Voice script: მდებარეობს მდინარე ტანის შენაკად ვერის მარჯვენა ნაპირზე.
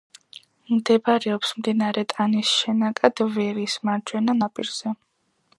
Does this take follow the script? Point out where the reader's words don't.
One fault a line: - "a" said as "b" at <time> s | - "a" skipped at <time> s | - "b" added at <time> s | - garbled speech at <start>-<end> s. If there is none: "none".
none